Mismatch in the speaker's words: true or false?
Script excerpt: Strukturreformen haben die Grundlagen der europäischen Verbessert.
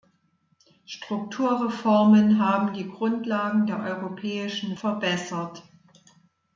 false